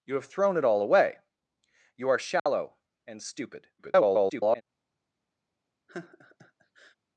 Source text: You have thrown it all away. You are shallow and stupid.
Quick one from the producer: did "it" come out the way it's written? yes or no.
yes